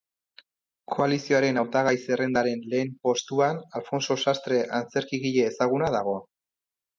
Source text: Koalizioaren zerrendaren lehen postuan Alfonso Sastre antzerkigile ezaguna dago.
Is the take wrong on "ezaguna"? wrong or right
right